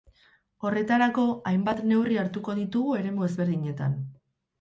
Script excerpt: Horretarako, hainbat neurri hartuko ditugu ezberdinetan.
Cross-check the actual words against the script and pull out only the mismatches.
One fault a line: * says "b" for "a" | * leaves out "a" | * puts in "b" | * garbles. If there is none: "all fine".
* puts in "eremu"